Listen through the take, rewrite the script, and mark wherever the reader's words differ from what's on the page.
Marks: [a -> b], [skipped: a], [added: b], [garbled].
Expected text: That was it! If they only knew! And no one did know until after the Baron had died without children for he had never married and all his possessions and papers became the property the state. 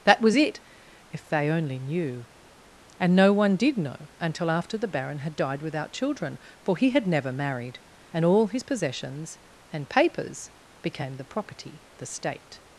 That was it! If they only knew! And no one did know until after the Baron had died without children for he had never married and all his possessions and papers became the property the state.